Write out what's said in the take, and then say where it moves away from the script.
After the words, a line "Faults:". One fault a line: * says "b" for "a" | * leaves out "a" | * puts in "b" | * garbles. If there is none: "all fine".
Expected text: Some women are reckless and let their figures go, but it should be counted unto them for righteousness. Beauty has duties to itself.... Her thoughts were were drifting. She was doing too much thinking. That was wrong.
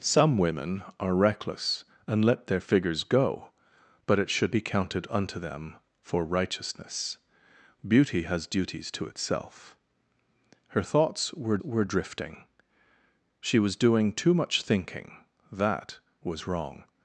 Some women are reckless and let their figures go, but it should be counted unto them for righteousness. Beauty has duties to itself.... Her thoughts were were drifting. She was doing too much thinking. That was wrong.
Faults:
all fine